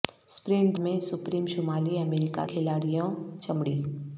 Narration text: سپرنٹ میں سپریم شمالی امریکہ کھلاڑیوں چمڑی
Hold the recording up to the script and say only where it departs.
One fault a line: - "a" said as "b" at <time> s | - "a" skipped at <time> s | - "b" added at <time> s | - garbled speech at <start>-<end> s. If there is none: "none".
none